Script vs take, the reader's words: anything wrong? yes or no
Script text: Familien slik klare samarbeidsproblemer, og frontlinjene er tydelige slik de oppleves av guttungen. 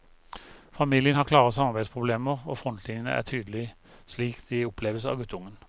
yes